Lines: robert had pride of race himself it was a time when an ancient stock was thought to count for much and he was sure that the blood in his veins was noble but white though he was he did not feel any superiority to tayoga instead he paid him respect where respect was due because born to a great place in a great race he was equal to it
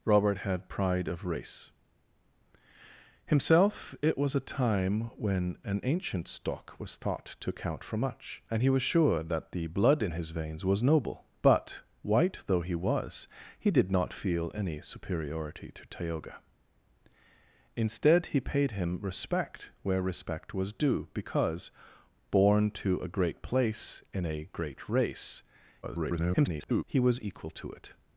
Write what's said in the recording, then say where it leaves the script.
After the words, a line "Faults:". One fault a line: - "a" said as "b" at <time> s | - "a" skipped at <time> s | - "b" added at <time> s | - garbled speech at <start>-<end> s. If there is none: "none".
robert had pride of race himself it was a time when an ancient stock was thought to count for much and he was sure that the blood in his veins was noble but white though he was he did not feel any superiority to tayoga instead he paid him respect where respect was due because born to a great place in a great race [garbled] he was equal to it
Faults:
- garbled speech at 25.8-26.8 s